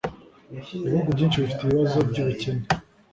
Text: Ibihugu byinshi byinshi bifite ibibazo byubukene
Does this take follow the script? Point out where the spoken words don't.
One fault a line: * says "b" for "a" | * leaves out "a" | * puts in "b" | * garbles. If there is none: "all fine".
* leaves out "byinshi"